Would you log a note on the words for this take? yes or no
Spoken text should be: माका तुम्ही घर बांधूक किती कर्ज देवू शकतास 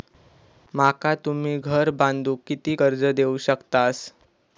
no